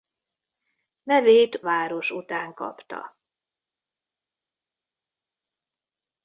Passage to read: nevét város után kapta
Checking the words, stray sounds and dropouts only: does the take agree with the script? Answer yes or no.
yes